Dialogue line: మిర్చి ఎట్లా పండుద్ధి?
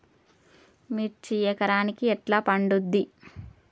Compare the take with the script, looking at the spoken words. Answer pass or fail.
fail